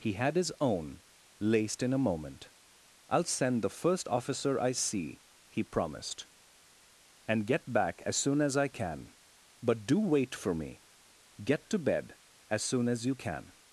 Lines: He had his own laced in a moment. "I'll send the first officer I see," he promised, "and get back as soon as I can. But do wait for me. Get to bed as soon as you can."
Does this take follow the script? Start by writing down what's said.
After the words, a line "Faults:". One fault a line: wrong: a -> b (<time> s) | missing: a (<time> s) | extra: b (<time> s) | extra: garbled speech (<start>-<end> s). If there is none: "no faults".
He had his own laced in a moment. "I'll send the first officer I see," he promised, "and get back as soon as I can. But do wait for me. Get to bed as soon as you can."
Faults:
no faults